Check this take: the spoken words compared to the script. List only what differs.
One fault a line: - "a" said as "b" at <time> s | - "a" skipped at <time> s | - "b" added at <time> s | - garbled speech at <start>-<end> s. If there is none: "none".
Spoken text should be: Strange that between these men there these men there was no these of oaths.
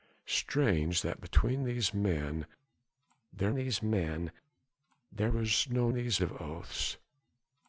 none